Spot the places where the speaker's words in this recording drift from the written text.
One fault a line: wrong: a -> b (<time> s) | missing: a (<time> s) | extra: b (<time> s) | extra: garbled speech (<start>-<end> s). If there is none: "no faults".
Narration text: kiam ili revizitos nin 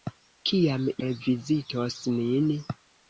missing: ili (0.9 s)